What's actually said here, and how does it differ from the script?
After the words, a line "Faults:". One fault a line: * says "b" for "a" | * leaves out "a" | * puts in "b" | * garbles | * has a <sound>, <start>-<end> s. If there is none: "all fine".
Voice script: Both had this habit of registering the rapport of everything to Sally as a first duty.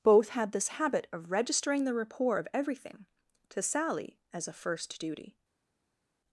Both had this habit of registering the rapport of everything to Sally as a first duty.
Faults:
all fine